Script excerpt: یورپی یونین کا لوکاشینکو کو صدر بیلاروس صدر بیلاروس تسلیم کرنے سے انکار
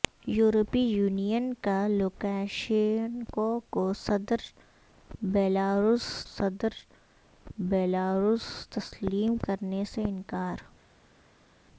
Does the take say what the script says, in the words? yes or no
yes